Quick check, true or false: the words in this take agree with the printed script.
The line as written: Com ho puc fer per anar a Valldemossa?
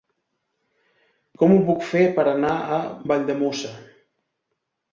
true